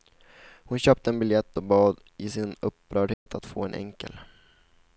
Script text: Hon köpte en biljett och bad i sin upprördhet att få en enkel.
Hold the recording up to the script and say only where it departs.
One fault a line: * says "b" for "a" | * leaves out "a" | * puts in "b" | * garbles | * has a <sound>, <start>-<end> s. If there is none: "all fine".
* has a dropout, 3.1-3.3 s